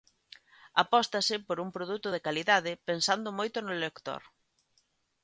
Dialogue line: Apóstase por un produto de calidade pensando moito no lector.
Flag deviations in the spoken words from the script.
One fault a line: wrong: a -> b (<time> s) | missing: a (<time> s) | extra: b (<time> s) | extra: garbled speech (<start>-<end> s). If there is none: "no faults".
no faults